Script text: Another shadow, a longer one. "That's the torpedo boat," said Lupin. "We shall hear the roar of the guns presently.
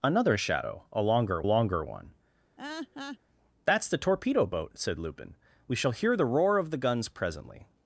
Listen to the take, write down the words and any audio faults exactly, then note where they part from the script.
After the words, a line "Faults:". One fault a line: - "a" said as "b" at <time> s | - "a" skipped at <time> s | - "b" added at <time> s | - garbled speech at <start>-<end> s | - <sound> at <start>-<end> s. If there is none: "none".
Another shadow, a longer longer one. "That's the torpedo boat," said Lupin. "We shall hear the roar of the guns presently.
Faults:
- "longer" added at 1.4 s
- laugh at 2.6-3.2 s